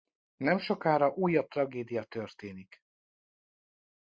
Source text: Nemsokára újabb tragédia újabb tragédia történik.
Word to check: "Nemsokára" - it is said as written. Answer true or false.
true